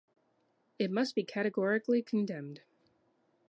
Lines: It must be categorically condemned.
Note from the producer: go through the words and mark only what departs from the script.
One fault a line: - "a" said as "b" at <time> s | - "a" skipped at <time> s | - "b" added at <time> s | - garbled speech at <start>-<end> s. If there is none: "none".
none